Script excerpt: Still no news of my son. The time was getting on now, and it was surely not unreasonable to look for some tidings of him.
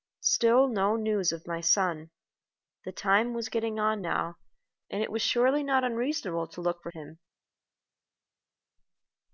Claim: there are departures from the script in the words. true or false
true